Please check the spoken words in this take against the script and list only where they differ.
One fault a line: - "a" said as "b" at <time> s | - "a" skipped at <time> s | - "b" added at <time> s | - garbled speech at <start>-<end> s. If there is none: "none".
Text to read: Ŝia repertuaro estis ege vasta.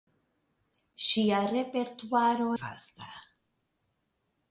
- "estis ege" skipped at 2.5 s